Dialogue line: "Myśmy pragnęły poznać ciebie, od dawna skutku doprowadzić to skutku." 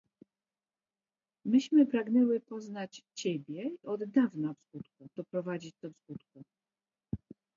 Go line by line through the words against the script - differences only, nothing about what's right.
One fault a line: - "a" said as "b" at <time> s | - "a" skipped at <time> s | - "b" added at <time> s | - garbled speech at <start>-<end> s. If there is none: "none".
none